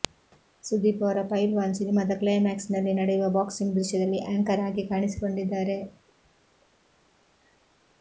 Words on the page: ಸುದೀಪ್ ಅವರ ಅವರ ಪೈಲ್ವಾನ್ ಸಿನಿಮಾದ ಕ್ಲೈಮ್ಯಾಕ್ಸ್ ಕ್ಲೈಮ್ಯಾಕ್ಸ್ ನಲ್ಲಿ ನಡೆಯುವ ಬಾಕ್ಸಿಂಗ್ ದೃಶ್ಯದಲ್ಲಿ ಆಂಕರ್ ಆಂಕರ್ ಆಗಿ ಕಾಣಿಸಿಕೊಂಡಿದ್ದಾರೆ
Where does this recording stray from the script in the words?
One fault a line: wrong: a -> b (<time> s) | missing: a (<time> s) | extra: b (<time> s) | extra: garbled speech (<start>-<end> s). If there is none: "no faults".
missing: ಅವರ (1.2 s)
missing: ಕ್ಲೈಮ್ಯಾಕ್ಸ್ (2.7 s)
missing: ಆಂಕರ್ (4.6 s)